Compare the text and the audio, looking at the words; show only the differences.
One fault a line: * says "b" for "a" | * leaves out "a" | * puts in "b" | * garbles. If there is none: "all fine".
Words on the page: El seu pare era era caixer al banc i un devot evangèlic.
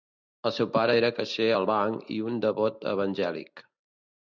* leaves out "era"